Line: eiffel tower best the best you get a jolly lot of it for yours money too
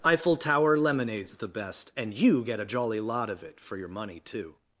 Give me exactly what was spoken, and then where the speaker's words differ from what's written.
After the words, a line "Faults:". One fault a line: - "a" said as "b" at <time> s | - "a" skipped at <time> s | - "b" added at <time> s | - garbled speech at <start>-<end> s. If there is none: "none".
eiffel tower lemonade's the best and you get a jolly lot of it for your money too
Faults:
- "best" said as "lemonade's" at 0.8 s
- "and" added at 1.9 s
- "yours" said as "your" at 3.8 s